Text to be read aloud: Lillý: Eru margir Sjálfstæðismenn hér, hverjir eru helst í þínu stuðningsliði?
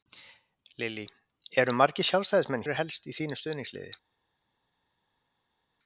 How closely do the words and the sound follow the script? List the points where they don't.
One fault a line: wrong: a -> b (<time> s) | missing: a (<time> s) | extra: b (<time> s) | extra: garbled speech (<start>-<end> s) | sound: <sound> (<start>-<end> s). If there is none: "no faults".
missing: hér hverjir (2.6 s)